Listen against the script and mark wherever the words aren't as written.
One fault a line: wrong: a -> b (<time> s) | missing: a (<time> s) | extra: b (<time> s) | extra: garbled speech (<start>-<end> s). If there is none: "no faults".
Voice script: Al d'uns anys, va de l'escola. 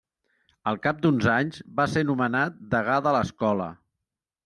extra: cap (0.8 s)
extra: ser nomenat degà (1.9 s)